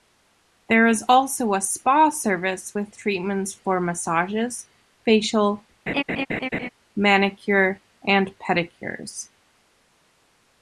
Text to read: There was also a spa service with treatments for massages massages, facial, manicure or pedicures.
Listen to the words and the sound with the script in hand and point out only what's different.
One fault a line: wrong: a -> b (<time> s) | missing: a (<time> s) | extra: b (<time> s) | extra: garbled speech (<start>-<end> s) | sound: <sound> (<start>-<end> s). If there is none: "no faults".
wrong: was -> is (0.9 s)
missing: massages (4.7 s)
sound: laugh (5.9-6.7 s)
wrong: or -> and (8.1 s)